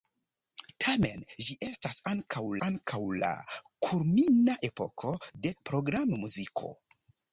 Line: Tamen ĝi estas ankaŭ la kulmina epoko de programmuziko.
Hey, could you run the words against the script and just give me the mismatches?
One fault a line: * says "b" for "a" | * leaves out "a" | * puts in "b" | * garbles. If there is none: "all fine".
* puts in "ankaŭ"